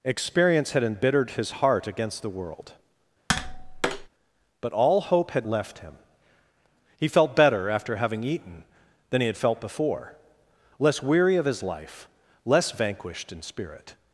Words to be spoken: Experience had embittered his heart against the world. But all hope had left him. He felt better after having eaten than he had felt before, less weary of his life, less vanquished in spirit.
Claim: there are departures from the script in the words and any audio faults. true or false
true